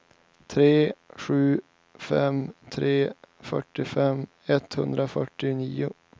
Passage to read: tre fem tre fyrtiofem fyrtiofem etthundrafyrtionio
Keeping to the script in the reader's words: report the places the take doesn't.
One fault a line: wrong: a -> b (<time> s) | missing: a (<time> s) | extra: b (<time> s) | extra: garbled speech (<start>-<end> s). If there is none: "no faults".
extra: sju (1.2 s)
missing: fyrtiofem (4.3 s)